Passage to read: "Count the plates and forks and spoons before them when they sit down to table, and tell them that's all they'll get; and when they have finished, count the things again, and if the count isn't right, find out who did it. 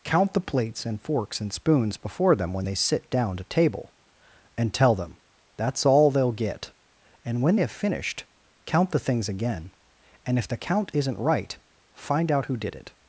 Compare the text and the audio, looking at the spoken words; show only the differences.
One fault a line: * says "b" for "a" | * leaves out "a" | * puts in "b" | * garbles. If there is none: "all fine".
* leaves out "they"